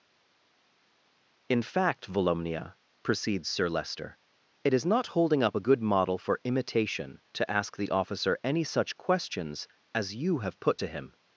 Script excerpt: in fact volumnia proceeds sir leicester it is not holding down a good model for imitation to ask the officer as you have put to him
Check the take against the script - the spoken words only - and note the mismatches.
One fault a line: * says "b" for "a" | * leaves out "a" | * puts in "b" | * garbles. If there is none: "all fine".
* says "up" for "down"
* puts in "any such questions"